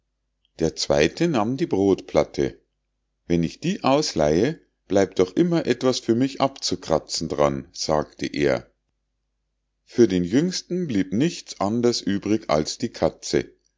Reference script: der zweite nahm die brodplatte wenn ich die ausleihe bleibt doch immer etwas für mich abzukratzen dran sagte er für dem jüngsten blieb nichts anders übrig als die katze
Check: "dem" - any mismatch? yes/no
yes